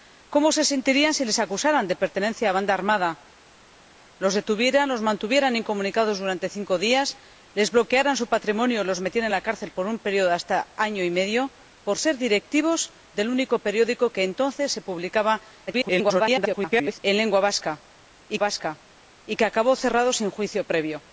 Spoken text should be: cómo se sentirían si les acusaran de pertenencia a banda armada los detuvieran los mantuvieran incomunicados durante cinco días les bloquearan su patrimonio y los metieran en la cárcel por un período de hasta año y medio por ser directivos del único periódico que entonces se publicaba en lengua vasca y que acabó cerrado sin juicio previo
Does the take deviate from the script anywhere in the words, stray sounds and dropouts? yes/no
yes